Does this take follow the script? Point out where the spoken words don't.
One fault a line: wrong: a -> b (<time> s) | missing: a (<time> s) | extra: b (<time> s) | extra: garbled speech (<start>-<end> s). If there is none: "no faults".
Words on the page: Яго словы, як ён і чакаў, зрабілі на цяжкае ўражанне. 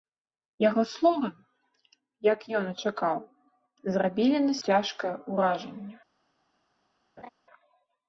no faults